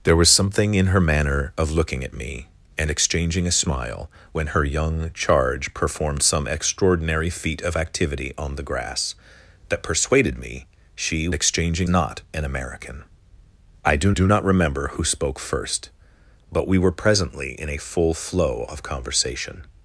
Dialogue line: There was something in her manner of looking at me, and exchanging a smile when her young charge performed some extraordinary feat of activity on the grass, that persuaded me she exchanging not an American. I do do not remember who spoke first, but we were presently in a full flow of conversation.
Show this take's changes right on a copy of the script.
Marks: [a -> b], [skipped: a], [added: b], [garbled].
There was something in her manner of looking at me, and exchanging a smile when her young charge performed some extraordinary feat of activity on the grass, that persuaded me she exchanging not an American. I do do not remember who spoke first, but we were presently in a full flow of conversation.